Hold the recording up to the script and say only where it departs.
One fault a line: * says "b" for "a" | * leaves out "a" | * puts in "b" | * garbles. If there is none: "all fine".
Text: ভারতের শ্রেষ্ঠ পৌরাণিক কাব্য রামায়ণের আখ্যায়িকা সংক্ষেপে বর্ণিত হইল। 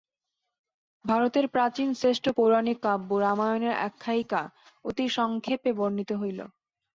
* puts in "প্রাচীন"
* puts in "অতি"